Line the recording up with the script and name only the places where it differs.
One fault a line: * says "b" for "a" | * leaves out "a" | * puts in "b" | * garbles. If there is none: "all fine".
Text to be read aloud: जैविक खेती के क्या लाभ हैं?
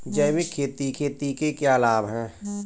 * puts in "खेती"